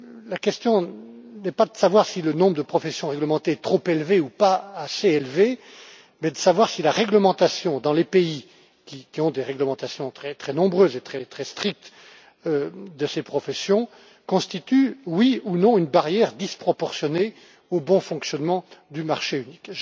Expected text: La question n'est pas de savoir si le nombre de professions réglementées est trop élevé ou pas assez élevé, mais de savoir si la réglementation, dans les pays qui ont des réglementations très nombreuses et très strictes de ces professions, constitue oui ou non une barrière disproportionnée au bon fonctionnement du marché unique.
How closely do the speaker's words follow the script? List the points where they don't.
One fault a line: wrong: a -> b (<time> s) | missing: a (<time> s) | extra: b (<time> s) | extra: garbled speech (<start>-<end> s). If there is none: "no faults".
no faults